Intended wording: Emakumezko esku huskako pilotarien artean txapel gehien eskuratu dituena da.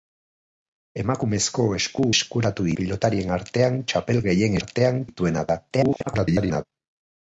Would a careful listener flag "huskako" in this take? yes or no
yes